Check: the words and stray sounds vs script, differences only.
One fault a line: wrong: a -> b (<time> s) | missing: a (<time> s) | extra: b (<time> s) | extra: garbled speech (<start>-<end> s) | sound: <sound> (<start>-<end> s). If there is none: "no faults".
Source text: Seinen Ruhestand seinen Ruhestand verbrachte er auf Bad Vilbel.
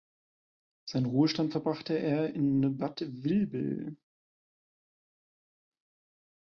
missing: seinen Ruhestand (1.5 s)
wrong: auf -> in (2.3 s)